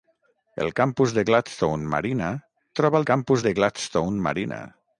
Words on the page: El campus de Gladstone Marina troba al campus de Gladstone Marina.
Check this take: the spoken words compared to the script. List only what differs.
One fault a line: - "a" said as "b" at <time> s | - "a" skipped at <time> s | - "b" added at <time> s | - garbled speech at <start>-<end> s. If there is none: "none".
none